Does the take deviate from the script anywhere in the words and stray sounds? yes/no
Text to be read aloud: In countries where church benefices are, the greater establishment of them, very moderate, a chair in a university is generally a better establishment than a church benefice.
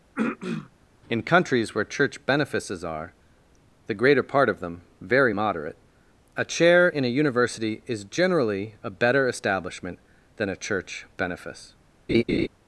yes